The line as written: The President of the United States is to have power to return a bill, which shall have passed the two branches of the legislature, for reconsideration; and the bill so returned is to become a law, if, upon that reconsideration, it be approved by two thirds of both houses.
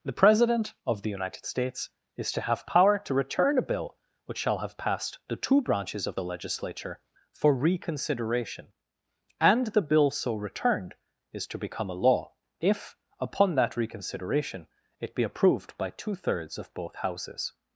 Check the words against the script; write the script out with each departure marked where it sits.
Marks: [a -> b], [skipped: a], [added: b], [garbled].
The President of the United States is to have power to return a bill, which shall have passed the two branches of the legislature, for reconsideration; and the bill so returned is to become a law, if, upon that reconsideration, it be approved by two thirds of both houses.